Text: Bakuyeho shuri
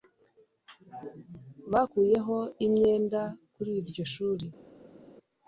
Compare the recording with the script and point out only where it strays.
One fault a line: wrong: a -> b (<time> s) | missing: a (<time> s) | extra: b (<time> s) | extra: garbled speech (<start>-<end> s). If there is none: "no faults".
extra: imyenda kuri iryo (2.6 s)